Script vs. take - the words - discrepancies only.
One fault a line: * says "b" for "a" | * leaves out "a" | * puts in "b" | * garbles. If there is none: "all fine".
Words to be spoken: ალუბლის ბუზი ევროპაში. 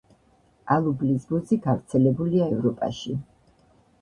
* puts in "გავრცელებულია"